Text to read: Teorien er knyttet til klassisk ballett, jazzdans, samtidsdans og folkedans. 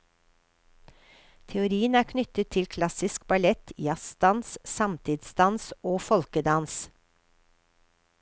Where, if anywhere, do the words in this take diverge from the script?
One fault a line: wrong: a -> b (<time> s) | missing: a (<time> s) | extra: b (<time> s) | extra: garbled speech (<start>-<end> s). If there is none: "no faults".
no faults